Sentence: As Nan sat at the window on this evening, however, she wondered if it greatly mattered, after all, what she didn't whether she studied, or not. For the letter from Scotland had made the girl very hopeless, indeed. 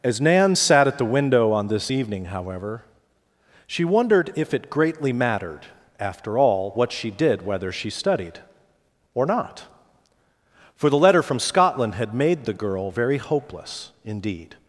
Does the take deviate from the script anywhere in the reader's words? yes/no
yes